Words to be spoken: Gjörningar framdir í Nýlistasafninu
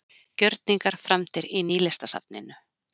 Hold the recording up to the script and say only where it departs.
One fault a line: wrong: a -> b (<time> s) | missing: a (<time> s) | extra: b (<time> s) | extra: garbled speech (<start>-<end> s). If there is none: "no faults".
no faults